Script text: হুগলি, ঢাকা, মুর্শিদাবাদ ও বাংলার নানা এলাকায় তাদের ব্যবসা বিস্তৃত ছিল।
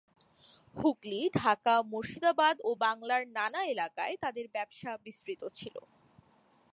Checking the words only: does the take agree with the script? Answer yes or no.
yes